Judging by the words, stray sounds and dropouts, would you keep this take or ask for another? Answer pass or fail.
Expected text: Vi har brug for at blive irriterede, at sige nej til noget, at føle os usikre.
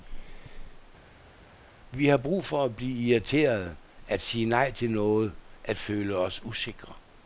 pass